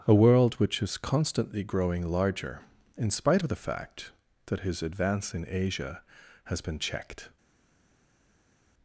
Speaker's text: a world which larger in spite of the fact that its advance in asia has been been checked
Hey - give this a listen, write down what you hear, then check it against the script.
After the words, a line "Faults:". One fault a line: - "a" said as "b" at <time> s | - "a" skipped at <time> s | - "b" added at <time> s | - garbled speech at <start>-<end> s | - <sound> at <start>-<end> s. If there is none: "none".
a world which is constantly growing larger in spite of the fact that his advance in asia has been checked
Faults:
- "is constantly growing" added at 0.8 s
- "its" said as "his" at 4.6 s
- "been" skipped at 6.8 s